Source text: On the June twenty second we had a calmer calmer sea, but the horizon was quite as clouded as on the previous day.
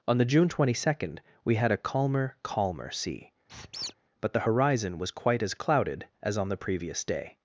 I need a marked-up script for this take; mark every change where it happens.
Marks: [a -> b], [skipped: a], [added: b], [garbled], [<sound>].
On the June twenty second we had a calmer calmer sea, [squeak] but the horizon was quite as clouded as on the previous day.